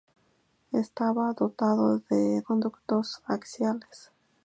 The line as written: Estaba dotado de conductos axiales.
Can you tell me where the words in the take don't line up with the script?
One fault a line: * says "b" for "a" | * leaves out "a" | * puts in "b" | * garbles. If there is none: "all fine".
all fine